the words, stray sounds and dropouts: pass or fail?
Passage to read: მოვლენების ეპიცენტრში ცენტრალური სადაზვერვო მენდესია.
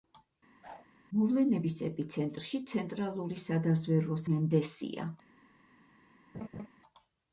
fail